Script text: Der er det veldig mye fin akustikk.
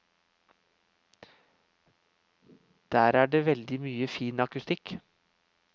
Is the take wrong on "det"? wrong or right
right